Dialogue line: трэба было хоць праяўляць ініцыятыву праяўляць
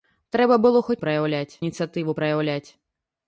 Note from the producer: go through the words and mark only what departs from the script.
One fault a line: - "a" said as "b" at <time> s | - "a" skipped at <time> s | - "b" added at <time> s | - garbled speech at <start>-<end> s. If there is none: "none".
none